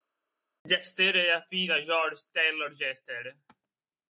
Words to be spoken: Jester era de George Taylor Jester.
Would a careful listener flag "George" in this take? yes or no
no